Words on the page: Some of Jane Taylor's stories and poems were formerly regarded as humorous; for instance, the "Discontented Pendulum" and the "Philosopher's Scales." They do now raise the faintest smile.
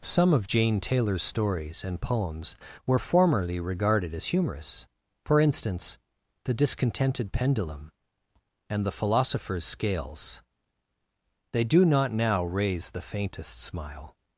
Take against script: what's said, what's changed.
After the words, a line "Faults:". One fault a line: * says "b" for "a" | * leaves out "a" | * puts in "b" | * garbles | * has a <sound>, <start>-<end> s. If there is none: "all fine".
Some of Jane Taylor's stories and poems were formerly regarded as humorous; for instance, the "Discontented Pendulum" and the "Philosopher's Scales." They do not now raise the faintest smile.
Faults:
* puts in "not"